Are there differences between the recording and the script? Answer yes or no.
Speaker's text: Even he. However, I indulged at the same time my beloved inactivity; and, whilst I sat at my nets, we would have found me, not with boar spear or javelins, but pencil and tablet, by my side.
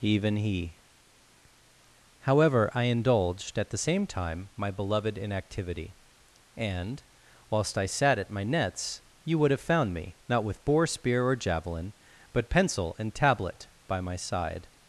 yes